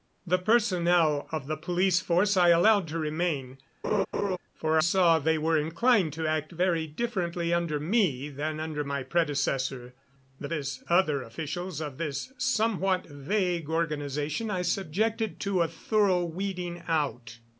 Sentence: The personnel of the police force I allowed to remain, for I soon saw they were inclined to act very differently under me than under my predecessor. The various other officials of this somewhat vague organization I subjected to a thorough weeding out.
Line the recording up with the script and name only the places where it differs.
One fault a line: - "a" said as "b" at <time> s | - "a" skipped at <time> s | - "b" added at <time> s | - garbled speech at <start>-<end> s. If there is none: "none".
- "I soon" skipped at 4.8 s
- "various" said as "this" at 10.5 s